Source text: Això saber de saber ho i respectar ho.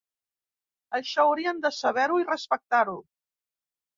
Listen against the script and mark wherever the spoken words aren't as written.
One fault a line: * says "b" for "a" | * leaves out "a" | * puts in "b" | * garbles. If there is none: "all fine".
* says "haurien" for "saber"